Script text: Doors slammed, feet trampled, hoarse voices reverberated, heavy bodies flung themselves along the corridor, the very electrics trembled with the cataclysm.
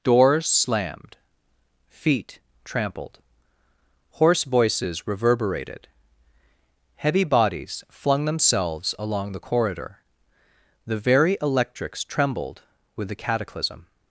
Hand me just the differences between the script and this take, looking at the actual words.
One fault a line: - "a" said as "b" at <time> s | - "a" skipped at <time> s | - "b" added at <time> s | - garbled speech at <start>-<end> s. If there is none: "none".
none